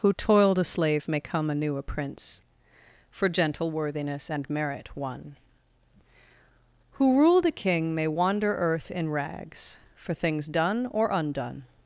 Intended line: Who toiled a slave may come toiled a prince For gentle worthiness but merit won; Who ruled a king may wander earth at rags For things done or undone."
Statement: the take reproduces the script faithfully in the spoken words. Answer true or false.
false